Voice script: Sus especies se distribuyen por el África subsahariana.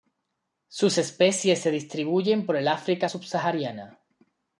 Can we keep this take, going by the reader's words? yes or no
yes